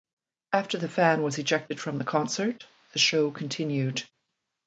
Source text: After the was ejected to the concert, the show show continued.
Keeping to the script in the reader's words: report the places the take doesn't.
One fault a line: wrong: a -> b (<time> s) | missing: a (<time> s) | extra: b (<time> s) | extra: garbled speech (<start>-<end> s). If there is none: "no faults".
extra: fan (0.9 s)
wrong: to -> from (1.8 s)
missing: show (3.3 s)